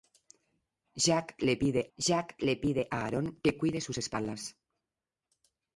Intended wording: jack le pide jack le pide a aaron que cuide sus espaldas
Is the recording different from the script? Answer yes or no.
no